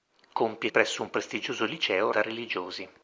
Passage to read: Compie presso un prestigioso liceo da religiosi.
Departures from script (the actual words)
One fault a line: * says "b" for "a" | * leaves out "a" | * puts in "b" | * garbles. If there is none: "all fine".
all fine